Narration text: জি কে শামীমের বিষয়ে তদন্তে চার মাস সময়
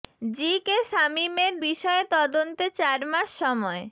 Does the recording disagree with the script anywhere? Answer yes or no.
no